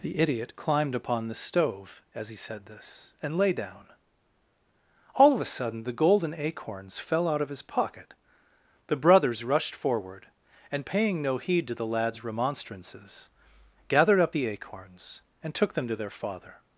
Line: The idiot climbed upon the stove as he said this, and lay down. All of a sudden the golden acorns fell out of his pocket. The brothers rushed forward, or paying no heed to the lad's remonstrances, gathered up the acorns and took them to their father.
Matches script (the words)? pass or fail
fail